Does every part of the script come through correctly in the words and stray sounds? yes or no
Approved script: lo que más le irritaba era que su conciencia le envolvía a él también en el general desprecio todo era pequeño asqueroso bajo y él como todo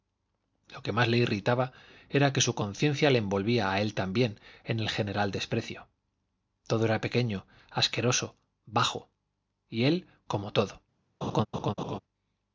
no